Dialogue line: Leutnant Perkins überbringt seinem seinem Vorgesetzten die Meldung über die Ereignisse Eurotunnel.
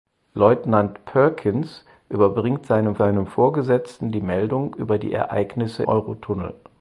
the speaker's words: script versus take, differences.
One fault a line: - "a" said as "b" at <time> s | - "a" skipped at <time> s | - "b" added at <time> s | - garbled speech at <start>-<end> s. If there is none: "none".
none